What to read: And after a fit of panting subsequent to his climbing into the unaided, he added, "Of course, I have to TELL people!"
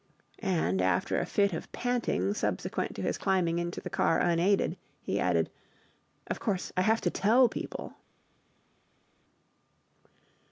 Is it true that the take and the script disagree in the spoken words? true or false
true